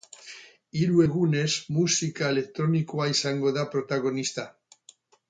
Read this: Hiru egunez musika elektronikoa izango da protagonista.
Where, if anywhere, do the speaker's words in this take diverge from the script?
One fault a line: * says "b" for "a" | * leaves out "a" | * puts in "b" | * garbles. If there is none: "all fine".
all fine